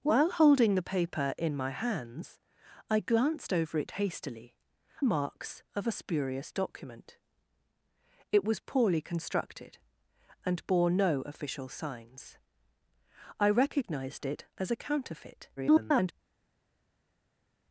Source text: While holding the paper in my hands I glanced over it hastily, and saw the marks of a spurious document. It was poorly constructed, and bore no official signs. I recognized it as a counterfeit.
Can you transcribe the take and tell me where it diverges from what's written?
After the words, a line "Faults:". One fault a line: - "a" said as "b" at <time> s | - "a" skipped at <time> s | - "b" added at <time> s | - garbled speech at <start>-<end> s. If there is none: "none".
While holding the paper in my hands I glanced over it hastily, marks of a spurious document. It was poorly constructed, and bore no official signs. I recognized it as a counterfeit. [garbled]
Faults:
- "and saw the" skipped at 4.6 s
- garbled speech at 15.6-16.1 s